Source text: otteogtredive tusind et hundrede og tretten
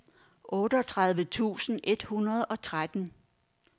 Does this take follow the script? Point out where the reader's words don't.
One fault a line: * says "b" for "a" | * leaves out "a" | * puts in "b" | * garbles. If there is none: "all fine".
all fine